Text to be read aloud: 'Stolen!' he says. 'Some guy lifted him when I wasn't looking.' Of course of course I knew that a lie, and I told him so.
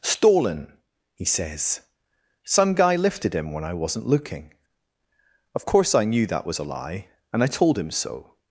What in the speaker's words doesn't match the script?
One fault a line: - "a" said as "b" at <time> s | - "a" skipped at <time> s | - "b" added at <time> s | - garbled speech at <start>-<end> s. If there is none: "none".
- "of course" skipped at 5.9 s
- "was" added at 6.5 s